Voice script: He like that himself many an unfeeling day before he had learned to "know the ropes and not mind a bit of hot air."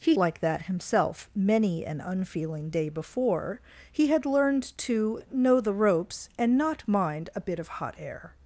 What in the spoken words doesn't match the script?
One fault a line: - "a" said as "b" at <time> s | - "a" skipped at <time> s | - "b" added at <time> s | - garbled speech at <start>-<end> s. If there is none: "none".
none